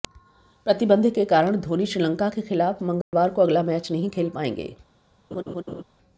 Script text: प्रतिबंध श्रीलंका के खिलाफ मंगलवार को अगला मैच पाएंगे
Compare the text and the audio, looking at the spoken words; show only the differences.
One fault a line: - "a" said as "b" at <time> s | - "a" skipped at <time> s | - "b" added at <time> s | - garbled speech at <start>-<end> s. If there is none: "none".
- "के कारण धोनी" added at 1.1 s
- "नहीं खेल" added at 3.9 s